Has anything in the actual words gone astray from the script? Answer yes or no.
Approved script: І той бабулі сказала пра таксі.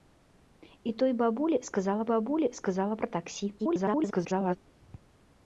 yes